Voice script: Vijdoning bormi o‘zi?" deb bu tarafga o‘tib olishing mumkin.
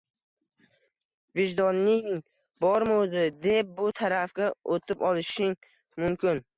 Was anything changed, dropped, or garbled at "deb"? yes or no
no